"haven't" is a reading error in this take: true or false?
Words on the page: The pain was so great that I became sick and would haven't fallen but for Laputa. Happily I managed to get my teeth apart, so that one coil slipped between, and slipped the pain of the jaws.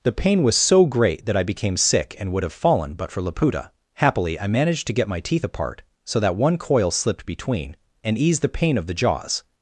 true